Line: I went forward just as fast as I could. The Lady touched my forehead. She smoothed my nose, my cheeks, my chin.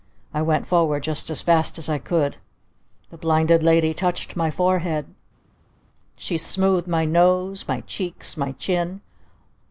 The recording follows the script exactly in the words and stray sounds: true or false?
false